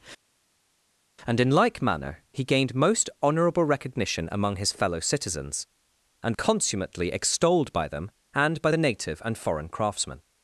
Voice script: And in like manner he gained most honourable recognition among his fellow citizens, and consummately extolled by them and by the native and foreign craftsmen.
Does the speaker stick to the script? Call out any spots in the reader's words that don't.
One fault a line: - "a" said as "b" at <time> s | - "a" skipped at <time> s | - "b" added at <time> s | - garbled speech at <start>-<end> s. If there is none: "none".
none